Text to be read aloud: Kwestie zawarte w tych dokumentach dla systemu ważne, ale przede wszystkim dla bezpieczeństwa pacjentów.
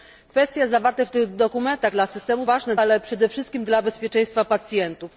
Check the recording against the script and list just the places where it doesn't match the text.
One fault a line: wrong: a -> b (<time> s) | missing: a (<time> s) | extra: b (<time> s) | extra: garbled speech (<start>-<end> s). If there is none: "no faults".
no faults